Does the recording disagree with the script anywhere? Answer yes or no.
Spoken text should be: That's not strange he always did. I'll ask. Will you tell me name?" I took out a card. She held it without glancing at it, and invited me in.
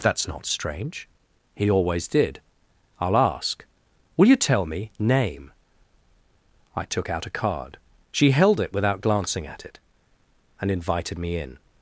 no